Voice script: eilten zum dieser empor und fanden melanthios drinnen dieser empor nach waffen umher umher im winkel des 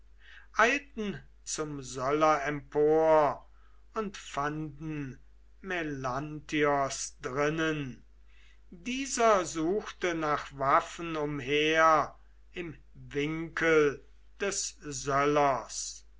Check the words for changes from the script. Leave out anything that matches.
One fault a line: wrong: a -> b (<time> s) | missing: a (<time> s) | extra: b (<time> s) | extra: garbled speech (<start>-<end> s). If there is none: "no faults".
wrong: dieser -> söller (1.8 s)
wrong: empor -> suchte (9.4 s)
missing: umher (12.2 s)